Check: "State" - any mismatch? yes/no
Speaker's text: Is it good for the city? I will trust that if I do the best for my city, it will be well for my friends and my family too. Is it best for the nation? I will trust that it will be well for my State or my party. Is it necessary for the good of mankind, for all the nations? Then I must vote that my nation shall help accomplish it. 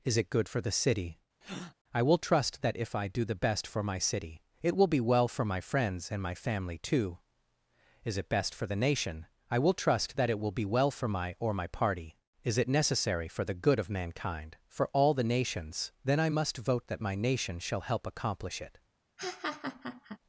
yes